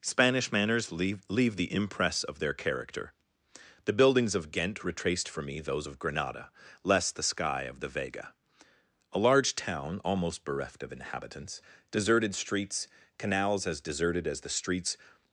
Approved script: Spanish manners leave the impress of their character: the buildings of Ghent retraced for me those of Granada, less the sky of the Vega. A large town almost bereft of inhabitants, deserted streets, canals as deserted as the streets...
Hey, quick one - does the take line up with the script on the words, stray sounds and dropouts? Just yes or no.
no